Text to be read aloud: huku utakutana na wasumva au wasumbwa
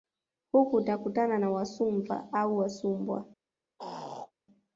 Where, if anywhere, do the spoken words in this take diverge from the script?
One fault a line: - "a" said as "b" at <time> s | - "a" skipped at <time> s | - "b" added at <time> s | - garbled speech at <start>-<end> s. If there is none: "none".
none